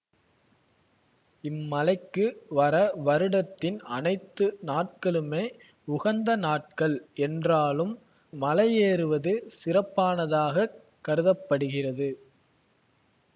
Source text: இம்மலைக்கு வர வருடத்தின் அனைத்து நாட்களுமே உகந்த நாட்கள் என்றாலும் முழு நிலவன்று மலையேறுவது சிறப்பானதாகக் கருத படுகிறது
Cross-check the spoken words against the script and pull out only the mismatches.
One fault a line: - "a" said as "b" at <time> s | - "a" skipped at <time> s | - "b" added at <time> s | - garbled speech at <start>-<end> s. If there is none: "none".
- "முழு நிலவன்று" skipped at 7.9 s